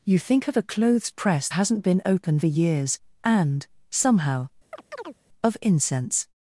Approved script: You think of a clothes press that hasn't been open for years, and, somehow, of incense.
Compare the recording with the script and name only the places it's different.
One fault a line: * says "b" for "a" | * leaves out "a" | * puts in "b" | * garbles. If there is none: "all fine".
* leaves out "that"
* leaves out "for"